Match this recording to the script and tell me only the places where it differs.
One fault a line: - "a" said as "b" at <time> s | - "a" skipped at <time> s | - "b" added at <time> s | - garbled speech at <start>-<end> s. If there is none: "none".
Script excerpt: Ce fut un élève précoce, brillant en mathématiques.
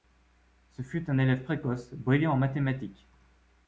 none